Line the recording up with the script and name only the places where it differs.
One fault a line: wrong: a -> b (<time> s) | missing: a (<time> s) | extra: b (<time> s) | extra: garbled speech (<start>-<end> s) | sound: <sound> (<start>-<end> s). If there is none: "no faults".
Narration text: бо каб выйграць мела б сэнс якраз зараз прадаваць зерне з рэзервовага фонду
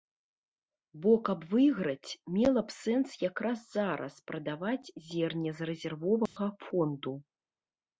sound: dropout (6.3-6.4 s)